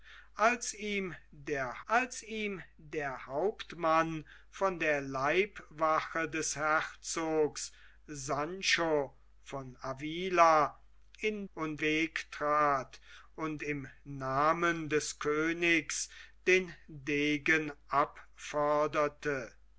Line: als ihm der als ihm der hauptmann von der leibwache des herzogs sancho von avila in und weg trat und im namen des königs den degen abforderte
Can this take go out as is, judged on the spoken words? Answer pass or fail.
pass